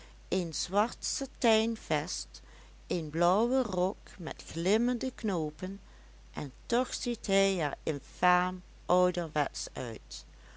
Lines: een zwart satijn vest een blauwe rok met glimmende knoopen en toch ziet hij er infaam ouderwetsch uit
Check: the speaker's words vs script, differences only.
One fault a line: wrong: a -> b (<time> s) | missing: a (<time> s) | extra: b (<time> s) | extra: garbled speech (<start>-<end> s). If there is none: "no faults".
no faults